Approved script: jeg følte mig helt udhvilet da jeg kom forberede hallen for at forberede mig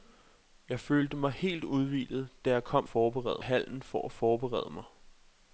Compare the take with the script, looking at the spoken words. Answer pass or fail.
pass